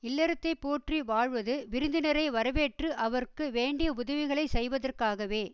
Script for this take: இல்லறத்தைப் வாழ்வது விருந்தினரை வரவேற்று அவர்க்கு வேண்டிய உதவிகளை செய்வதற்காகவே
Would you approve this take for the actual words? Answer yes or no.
no